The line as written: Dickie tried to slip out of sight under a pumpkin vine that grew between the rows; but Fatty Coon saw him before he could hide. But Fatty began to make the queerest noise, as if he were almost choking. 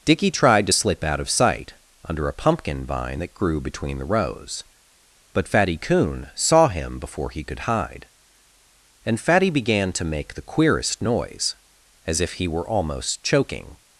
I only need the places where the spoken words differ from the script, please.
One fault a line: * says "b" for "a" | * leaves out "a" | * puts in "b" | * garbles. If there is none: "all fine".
* says "And" for "But"